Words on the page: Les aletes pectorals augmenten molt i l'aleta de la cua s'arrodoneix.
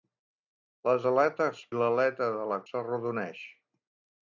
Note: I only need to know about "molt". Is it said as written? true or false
false